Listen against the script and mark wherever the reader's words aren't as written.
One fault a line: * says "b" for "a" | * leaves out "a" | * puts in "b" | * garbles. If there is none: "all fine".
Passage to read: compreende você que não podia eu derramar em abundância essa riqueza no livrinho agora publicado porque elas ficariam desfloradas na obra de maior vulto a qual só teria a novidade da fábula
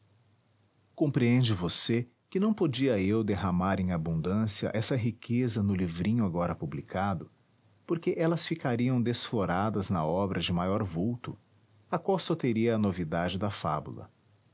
all fine